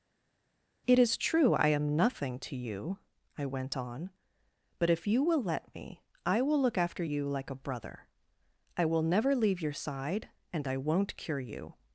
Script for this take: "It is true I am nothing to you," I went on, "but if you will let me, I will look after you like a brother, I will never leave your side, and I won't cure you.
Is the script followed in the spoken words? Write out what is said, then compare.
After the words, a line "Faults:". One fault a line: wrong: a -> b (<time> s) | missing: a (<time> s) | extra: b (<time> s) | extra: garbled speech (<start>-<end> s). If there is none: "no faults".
"It is true I am nothing to you," I went on, "but if you will let me, I will look after you like a brother, I will never leave your side, and I won't cure you.
Faults:
no faults